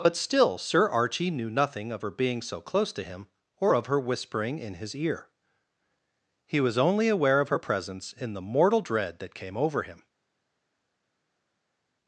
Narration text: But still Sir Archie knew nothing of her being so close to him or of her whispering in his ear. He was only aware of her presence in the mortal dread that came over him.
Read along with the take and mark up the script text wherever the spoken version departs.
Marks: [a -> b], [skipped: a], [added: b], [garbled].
But still Sir Archie knew nothing of her being so close to him or of her whispering in his ear. He was only aware of her presence in the mortal dread that came over him.